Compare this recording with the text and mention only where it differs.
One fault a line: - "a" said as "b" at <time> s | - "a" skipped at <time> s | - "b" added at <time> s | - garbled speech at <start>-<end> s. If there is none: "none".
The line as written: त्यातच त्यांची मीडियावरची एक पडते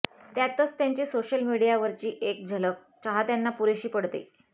- "सोशल" added at 1.1 s
- "झलक चाहत्यांना पुरेशी" added at 2.5 s